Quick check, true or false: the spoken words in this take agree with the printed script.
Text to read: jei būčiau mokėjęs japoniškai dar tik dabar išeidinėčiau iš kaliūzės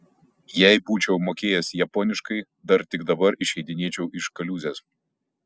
true